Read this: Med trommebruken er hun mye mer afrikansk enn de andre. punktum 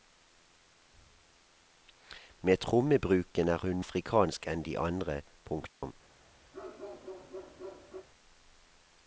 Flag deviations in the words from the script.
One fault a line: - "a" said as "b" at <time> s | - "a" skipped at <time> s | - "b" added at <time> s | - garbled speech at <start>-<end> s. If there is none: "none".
- "mye mer" skipped at 3.8 s